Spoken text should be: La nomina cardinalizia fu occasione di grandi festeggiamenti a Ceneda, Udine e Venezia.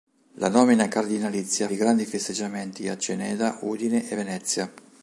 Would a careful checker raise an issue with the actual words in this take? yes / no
yes